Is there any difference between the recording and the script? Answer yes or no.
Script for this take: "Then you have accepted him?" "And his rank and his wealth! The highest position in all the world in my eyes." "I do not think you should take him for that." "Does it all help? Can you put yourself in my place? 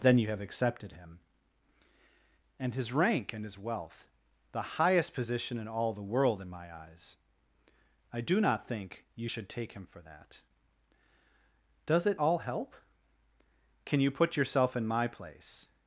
no